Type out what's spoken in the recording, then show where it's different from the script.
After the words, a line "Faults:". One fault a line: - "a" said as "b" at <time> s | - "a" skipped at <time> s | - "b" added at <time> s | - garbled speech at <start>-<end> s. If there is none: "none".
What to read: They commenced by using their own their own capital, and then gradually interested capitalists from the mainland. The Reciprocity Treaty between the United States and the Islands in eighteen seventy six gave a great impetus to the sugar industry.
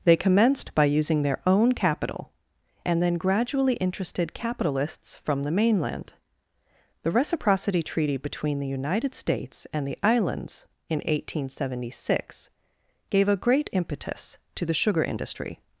They commenced by using their own capital, and then gradually interested capitalists from the mainland. The Reciprocity Treaty between the United States and the Islands in eighteen seventy six gave a great impetus to the sugar industry.
Faults:
- "their own" skipped at 1.7 s